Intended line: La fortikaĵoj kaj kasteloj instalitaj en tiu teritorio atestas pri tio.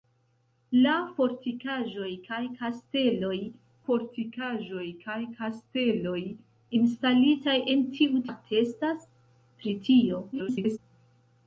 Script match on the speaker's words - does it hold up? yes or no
no